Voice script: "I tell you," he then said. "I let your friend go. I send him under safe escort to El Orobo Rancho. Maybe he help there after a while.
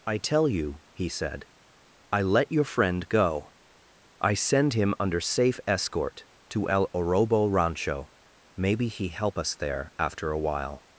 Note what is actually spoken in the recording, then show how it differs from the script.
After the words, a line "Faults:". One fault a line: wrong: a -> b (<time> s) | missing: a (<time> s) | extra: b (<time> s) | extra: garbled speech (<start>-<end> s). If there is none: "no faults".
"I tell you," he said. "I let your friend go. I send him under safe escort to El Orobo Rancho. Maybe he help us there after a while.
Faults:
missing: then (1.1 s)
extra: us (9.4 s)